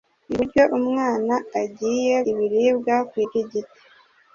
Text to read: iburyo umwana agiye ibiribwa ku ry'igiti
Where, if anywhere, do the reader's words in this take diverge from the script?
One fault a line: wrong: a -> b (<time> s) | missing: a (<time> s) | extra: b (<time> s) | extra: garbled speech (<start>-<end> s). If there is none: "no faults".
no faults